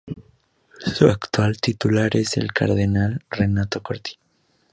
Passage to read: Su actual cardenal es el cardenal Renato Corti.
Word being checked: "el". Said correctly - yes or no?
yes